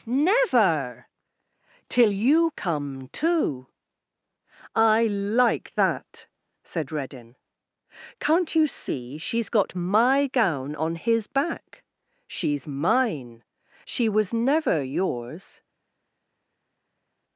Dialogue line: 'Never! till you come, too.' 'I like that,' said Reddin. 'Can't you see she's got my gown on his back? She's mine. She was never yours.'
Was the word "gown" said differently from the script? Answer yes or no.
no